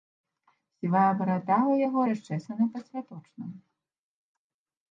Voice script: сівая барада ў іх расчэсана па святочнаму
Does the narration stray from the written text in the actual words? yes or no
yes